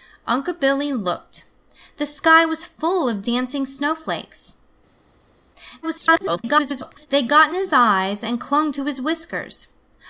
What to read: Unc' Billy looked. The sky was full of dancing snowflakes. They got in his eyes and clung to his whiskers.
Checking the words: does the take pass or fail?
fail